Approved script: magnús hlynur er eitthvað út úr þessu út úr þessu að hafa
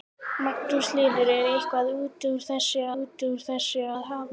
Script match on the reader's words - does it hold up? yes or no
yes